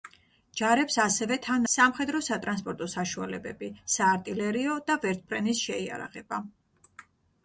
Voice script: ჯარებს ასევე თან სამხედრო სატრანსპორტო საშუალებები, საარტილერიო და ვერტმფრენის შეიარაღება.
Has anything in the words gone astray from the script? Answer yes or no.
no